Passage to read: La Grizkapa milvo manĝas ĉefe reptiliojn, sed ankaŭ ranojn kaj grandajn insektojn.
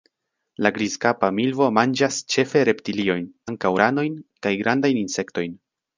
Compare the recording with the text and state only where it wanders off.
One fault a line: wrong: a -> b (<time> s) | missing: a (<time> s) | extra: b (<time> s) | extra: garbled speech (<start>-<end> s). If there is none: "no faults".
missing: sed (3.3 s)